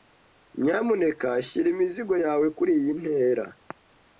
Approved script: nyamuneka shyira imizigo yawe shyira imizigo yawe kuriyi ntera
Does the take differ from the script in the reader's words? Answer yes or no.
yes